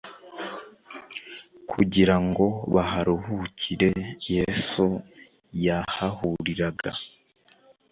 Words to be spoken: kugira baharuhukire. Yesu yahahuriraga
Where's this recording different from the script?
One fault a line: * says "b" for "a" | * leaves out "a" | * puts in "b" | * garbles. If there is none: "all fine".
* puts in "ngo"